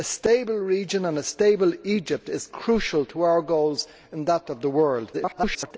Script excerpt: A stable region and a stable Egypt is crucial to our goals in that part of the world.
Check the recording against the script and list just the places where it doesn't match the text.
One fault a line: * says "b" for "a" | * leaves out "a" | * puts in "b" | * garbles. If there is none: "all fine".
* leaves out "part"
* garbles